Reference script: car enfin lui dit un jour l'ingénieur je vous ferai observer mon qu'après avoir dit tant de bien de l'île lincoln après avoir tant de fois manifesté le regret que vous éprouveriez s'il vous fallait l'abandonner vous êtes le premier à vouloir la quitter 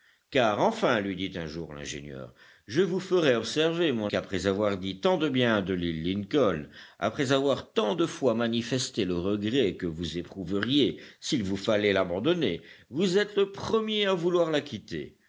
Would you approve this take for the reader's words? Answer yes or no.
yes